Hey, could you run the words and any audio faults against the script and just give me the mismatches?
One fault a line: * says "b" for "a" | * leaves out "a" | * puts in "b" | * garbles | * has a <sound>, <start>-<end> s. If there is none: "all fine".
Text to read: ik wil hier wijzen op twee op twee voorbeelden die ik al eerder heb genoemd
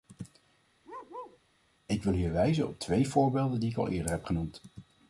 * has a bark, 0.8-1.4 s
* leaves out "op twee"